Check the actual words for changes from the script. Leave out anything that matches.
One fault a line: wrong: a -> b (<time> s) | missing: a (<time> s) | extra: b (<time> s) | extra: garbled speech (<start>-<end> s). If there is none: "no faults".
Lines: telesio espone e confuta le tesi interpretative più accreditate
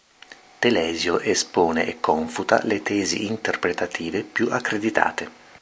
no faults